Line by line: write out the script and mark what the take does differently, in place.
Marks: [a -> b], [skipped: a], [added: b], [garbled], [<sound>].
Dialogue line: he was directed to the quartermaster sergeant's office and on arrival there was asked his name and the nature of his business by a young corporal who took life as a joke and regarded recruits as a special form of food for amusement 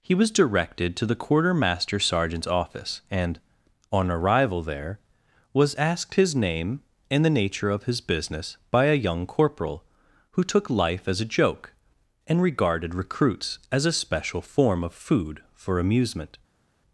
he was directed to the quartermaster sergeant's office and on arrival there was asked his name and the nature of his business by a young corporal who took life as a joke and regarded recruits as a special form of food for amusement